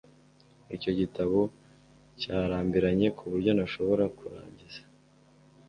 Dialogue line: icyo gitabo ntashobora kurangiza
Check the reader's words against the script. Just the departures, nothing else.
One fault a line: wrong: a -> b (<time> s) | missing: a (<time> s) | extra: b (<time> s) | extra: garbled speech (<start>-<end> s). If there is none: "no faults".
extra: cyarambiranye kuburyo (2.2 s)